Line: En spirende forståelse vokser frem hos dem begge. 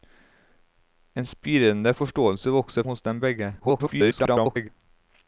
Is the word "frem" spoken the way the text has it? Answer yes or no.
no